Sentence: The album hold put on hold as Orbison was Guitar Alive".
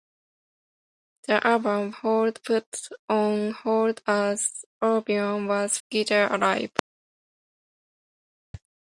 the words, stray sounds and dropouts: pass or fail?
pass